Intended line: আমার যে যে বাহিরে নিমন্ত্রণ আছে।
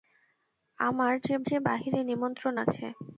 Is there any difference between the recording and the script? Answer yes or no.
no